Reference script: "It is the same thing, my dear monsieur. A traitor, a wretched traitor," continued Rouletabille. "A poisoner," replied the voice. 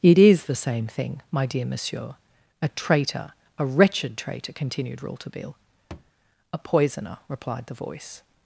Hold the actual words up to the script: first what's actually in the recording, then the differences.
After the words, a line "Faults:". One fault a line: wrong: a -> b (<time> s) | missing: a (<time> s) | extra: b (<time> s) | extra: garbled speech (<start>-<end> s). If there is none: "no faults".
"It is the same thing, my dear monsieur. A traitor, a wretched traitor," continued Rouletabille. "A poisoner," replied the voice.
Faults:
no faults